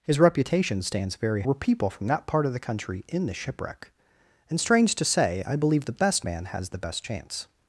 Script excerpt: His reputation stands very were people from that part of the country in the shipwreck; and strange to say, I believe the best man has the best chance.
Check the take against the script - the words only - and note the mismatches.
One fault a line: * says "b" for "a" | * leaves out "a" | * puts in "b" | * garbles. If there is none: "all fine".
all fine